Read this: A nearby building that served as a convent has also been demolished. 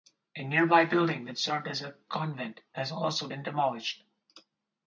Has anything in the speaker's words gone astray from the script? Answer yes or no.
no